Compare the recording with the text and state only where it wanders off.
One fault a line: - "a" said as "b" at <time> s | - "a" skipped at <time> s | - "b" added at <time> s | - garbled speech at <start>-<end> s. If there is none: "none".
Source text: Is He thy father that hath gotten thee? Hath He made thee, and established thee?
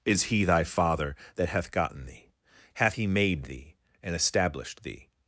none